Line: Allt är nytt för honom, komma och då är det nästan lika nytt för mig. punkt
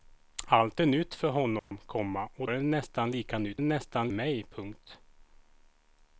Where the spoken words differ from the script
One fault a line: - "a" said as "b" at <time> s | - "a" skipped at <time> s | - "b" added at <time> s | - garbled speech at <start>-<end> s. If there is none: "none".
- "då" skipped at 2.5 s
- "för" said as "nästan" at 3.6 s